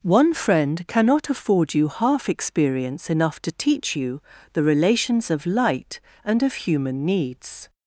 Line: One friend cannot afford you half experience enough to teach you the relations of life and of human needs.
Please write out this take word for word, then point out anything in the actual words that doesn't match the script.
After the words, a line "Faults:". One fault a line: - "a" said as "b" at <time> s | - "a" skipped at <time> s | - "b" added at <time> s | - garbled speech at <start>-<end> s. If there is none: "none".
One friend cannot afford you half experience enough to teach you the relations of light and of human needs.
Faults:
- "life" said as "light" at 5.5 s